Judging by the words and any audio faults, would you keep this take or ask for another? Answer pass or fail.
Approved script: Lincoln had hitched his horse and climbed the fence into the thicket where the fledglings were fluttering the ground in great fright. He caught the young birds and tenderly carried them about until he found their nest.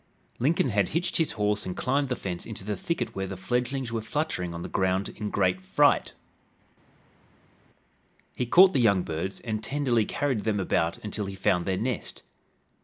fail